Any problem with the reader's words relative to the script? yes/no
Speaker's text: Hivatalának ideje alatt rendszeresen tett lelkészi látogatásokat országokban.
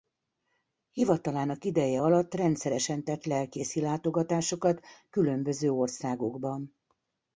yes